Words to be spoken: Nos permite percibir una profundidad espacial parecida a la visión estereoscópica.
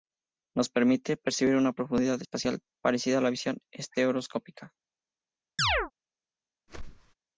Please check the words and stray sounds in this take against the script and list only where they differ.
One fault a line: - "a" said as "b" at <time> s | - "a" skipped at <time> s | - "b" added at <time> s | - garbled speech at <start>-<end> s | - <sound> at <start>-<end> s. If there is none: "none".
- chirp at 5.6-5.9 s
- whoosh at 6.7-7.1 s